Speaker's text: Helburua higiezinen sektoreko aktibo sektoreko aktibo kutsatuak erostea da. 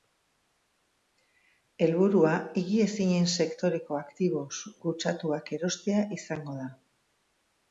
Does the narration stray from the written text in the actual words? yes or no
yes